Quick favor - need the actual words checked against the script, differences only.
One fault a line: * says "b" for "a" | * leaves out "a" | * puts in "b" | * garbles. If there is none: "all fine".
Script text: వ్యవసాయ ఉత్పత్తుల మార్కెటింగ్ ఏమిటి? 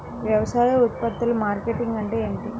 * puts in "అంటే"